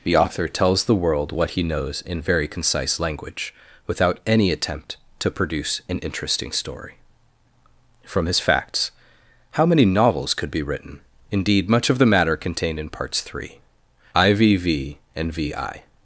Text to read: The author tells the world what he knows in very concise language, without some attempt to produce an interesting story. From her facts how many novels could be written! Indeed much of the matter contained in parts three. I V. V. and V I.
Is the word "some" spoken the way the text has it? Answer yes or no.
no